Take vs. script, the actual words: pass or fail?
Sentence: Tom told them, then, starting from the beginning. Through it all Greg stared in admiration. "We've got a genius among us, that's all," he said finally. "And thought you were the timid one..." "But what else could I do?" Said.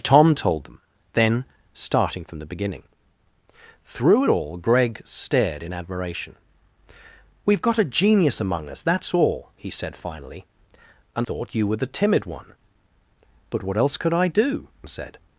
pass